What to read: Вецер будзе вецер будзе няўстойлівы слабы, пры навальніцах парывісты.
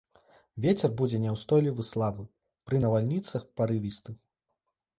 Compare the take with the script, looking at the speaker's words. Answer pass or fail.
fail